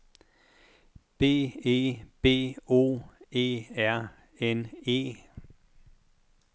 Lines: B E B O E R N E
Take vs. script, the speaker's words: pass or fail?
pass